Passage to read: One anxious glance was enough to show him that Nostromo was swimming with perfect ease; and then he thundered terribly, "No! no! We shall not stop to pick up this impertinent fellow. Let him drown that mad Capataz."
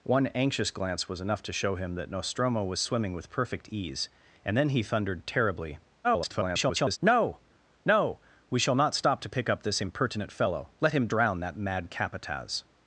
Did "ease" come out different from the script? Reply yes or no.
no